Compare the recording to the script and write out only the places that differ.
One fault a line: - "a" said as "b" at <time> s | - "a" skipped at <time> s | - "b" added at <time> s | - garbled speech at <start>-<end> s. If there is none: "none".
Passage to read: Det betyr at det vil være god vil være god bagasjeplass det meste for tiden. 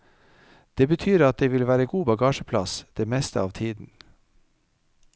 - "vil være god" skipped at 2.1 s
- "for" said as "av" at 3.4 s